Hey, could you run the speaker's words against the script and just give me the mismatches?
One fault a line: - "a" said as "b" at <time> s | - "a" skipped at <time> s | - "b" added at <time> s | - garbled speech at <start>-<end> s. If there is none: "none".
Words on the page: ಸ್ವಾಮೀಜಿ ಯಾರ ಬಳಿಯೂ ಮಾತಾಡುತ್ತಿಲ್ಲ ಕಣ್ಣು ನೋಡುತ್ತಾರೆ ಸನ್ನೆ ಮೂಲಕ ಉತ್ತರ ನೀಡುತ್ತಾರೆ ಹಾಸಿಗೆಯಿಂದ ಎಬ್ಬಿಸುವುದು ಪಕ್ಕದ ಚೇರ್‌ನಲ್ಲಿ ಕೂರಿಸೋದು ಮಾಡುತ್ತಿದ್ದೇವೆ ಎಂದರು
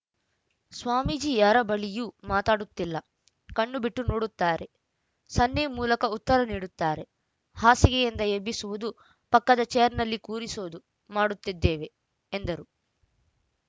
- "ಬಿಟ್ಟು" added at 3.8 s